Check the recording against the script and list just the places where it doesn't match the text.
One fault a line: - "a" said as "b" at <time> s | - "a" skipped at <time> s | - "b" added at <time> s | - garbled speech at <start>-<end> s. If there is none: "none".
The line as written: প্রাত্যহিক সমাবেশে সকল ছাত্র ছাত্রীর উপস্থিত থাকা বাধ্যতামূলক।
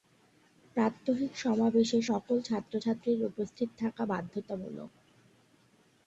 none